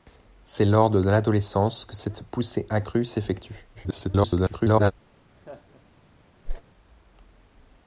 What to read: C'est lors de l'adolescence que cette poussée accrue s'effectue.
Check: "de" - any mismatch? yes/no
no